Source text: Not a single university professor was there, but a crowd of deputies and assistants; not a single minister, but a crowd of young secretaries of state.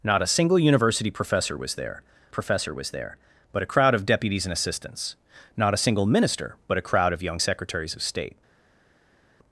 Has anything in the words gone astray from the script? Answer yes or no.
yes